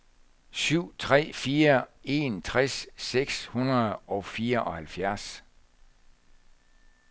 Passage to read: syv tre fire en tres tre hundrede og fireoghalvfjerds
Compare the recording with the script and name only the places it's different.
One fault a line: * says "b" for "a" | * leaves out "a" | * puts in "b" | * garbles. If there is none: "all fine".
* says "seks" for "tre"